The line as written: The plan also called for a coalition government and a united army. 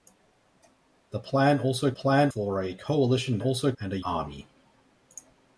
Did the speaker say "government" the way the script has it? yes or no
no